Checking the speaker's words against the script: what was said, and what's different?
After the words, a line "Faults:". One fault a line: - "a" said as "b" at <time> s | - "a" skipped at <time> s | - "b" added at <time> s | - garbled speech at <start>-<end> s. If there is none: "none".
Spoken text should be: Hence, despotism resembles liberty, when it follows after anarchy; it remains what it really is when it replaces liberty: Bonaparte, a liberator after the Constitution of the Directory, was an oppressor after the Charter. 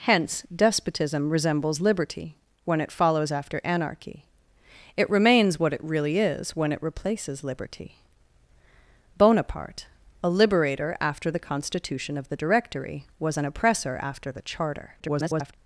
Hence, despotism resembles liberty, when it follows after anarchy; it remains what it really is when it replaces liberty: Bonaparte, a liberator after the Constitution of the Directory, was an oppressor after the Charter. [garbled]
Faults:
- garbled speech at 15.0-15.5 s